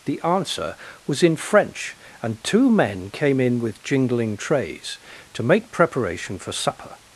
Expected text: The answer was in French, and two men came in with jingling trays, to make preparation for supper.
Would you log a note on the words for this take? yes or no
no